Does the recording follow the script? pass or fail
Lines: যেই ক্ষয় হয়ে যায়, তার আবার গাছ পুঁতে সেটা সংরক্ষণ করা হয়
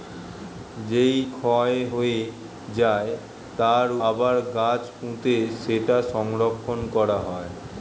pass